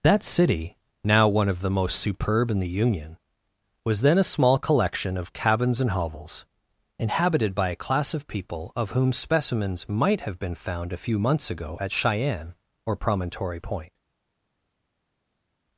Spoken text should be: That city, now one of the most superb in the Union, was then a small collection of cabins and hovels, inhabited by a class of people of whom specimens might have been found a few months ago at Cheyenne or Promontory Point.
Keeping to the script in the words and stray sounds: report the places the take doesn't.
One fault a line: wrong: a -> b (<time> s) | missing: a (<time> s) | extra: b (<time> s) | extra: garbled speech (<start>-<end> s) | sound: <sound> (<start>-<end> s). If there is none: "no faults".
no faults